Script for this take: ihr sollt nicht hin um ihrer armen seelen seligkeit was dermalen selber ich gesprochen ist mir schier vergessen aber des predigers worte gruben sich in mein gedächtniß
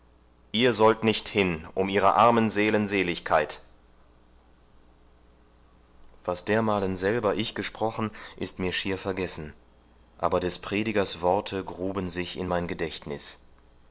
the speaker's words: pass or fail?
pass